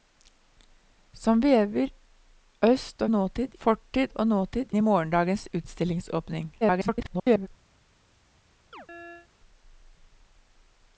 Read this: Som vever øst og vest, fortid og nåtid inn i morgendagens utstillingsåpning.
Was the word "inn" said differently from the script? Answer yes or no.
yes